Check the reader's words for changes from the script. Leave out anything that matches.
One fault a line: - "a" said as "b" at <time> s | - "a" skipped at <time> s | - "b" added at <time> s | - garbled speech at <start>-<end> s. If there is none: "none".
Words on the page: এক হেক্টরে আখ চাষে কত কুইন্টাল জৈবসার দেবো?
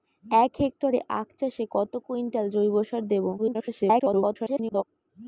- garbled speech at 3.4-4.8 s